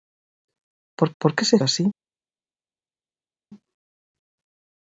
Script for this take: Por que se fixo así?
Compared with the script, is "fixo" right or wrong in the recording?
wrong